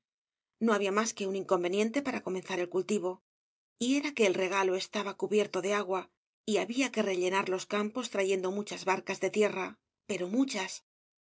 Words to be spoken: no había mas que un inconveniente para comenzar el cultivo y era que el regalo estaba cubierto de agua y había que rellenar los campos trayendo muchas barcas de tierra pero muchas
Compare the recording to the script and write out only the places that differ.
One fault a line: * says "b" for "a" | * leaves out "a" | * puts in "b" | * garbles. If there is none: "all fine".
all fine